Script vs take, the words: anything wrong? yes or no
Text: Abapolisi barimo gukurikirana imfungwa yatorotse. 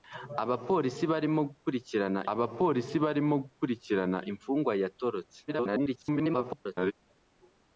yes